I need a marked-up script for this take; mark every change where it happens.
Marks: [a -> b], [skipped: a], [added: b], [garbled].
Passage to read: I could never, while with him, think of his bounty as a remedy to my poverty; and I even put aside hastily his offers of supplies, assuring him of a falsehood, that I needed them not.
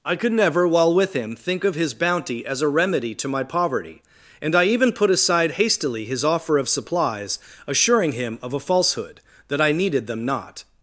I could never, while with him, think of his bounty as a remedy to my poverty; and I even put aside hastily his [offers -> offer] of supplies, assuring him of a falsehood, that I needed them not.